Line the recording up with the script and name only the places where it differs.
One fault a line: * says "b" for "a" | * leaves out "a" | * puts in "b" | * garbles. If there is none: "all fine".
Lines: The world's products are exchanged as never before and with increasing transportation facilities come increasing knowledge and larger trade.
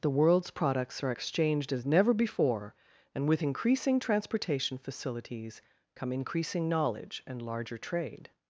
all fine